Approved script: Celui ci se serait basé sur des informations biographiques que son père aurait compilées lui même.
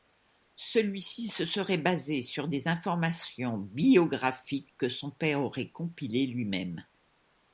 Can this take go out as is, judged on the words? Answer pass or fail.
pass